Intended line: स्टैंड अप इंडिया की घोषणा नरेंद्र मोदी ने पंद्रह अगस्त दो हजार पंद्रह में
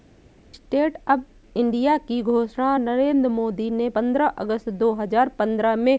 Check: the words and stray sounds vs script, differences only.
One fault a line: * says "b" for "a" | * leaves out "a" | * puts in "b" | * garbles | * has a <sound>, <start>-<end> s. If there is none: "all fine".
all fine